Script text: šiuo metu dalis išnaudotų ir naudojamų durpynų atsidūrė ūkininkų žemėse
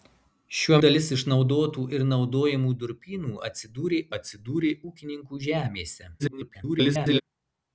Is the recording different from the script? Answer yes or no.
yes